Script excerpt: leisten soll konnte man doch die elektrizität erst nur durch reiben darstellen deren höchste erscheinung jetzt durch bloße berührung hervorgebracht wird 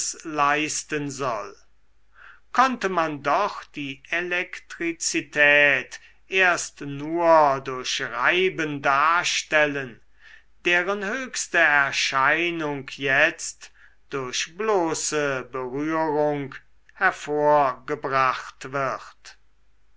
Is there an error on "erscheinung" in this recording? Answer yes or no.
no